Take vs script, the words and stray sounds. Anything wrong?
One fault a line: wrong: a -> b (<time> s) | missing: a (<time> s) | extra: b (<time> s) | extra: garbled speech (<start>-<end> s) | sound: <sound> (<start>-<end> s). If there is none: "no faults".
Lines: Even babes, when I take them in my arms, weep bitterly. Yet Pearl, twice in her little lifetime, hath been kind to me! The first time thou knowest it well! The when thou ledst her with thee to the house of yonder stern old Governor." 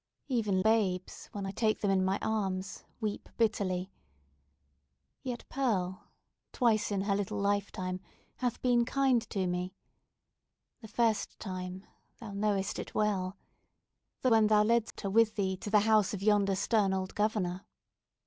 sound: dropout (14.9-15.0 s)